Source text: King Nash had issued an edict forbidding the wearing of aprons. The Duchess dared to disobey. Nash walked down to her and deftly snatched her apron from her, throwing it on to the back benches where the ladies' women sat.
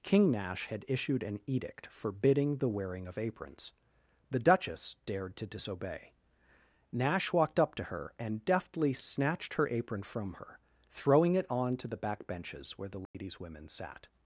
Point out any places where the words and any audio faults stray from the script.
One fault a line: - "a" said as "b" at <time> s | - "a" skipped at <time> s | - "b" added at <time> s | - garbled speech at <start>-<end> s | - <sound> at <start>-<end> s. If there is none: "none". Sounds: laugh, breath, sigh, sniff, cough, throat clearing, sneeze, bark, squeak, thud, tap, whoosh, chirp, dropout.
- "down" said as "up" at 7.6 s
- dropout at 13.1-13.1 s